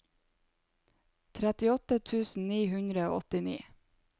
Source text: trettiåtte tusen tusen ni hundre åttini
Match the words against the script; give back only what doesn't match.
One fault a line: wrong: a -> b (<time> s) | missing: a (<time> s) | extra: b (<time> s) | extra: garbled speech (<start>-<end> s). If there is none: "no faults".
missing: tusen (2.5 s)
extra: og (3.1 s)